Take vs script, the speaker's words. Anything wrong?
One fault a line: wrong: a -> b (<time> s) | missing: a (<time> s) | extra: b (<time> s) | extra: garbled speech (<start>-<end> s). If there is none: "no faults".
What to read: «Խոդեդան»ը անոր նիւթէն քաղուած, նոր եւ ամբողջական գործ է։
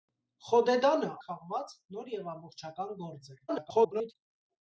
missing: անոր նիւթէն (1.1 s)
extra: garbled speech (3.5-4.1 s)